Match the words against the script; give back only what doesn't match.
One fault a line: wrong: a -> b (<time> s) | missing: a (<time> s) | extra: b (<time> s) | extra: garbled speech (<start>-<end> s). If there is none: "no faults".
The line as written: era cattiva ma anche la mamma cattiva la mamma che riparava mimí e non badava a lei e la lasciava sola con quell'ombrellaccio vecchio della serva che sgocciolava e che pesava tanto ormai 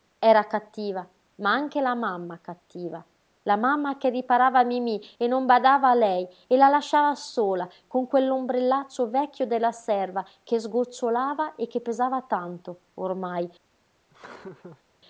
no faults